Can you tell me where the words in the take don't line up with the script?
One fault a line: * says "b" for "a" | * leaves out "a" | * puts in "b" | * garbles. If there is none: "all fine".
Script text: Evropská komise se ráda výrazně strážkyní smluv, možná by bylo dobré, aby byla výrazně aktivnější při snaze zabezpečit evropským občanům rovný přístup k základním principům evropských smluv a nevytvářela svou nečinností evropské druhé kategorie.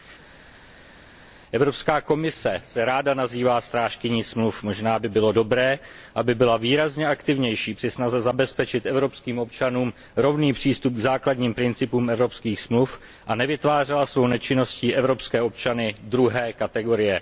* says "nazývá" for "výrazně"
* puts in "občany"